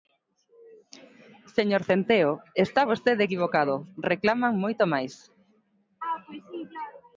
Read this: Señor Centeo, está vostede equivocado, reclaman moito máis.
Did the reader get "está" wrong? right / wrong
right